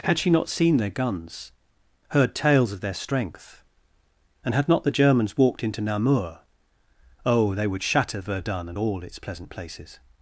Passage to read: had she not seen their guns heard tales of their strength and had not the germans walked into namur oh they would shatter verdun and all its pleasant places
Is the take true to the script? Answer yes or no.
yes